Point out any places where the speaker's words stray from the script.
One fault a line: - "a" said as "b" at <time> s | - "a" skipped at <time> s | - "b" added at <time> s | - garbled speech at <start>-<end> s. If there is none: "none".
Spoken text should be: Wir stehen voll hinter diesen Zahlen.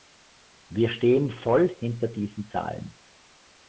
none